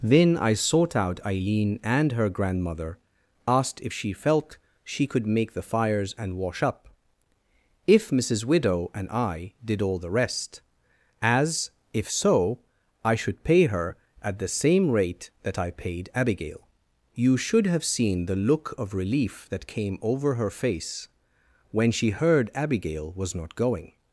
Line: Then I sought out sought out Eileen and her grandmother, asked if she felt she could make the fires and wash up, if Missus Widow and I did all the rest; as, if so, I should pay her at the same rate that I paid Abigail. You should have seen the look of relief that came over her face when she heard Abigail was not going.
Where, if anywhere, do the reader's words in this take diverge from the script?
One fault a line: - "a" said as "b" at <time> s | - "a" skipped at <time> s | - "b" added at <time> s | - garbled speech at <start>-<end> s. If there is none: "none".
- "sought out" skipped at 1.2 s